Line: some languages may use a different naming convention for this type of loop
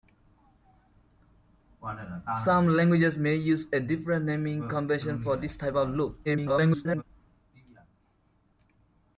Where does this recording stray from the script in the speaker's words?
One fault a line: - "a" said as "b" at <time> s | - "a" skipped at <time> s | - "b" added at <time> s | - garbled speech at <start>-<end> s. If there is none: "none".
- garbled speech at 6.2-7.0 s